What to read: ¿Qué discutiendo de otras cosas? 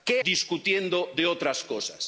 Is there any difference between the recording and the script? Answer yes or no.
no